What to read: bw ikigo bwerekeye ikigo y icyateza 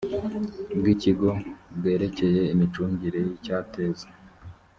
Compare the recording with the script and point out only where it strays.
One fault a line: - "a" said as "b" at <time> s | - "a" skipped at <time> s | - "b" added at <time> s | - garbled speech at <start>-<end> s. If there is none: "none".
- "ikigo" said as "imicungire" at 2.5 s